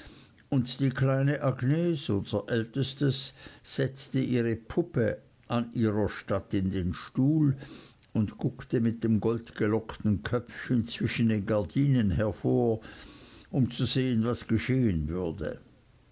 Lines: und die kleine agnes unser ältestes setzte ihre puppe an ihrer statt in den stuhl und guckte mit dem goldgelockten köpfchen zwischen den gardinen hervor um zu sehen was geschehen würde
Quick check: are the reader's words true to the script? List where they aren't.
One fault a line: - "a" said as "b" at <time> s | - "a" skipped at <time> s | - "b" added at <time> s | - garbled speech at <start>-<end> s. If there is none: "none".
none